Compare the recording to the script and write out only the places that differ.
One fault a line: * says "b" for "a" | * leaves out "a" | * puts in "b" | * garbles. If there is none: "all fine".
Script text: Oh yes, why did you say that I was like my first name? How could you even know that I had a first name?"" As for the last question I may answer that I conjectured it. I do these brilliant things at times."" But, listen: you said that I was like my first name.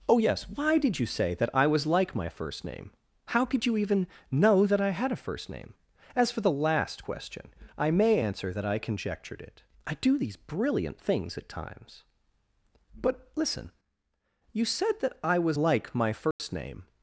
all fine